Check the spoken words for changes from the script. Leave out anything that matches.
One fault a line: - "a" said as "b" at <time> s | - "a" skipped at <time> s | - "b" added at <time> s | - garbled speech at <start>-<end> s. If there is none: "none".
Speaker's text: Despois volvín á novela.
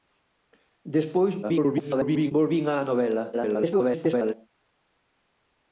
- garbled speech at 1.4-2.3 s
- garbled speech at 3.3-4.3 s